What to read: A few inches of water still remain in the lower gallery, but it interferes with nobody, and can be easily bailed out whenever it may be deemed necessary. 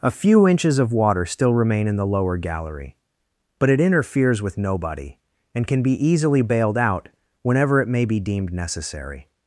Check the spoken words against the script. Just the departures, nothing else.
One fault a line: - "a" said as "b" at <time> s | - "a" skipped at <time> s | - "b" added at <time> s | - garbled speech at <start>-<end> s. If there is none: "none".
none